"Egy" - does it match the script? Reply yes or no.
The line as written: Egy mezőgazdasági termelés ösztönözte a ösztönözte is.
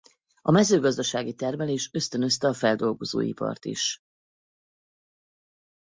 no